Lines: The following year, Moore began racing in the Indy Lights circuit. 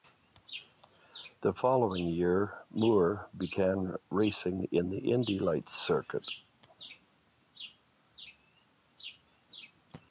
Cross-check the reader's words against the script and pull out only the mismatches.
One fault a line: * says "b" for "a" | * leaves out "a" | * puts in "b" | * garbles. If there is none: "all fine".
all fine